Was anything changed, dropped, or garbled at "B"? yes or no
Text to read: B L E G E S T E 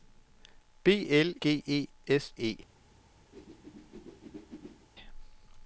no